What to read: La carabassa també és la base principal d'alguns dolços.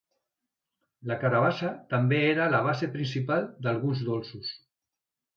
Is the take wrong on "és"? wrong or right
wrong